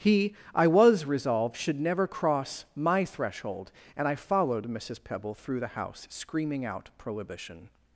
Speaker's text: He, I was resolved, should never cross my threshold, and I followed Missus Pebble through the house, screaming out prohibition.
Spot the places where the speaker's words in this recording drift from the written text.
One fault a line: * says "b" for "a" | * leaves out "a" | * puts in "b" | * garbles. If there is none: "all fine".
all fine